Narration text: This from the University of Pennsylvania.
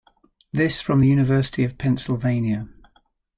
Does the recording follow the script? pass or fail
pass